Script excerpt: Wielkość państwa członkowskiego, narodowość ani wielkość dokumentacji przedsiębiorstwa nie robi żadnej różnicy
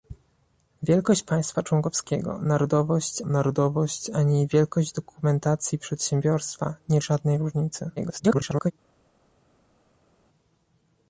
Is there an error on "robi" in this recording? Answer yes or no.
yes